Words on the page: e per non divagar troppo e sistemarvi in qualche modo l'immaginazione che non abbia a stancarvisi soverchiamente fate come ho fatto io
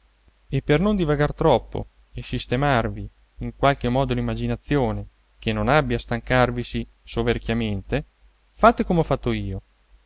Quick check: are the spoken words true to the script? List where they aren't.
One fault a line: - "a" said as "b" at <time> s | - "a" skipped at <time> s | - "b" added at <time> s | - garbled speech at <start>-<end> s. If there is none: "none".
none